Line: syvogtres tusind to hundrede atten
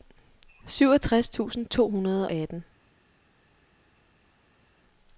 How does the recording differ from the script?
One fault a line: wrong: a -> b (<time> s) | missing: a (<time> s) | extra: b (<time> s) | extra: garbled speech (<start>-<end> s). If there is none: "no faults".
no faults